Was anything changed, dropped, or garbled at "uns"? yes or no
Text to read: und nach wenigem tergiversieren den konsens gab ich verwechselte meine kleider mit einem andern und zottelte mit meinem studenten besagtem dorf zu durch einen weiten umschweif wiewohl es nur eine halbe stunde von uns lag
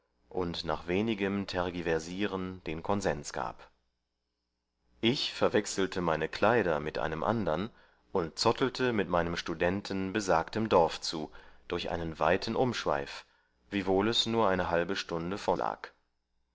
yes